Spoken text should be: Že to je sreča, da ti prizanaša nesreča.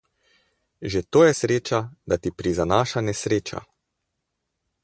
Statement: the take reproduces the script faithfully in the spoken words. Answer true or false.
true